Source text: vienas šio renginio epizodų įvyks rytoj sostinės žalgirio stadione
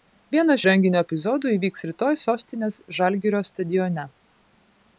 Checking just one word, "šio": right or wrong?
wrong